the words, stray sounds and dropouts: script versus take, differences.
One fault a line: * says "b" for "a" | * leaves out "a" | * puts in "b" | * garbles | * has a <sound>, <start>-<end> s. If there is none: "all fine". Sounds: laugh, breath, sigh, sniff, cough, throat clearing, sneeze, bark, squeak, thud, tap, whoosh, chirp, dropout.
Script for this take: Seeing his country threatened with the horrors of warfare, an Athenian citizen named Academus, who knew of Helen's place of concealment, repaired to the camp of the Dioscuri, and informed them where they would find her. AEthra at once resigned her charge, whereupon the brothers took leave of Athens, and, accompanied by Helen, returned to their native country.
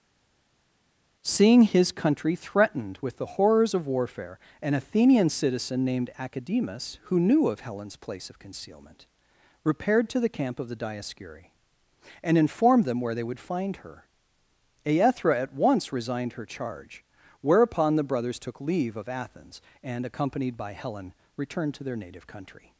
all fine